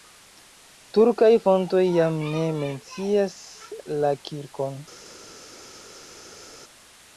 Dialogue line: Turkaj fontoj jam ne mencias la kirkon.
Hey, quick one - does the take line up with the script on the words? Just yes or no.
yes